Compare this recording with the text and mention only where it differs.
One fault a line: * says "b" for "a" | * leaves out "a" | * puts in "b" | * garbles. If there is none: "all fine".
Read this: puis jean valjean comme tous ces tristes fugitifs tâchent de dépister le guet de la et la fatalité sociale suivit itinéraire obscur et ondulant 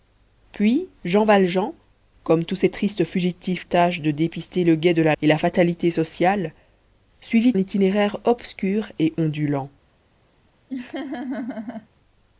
all fine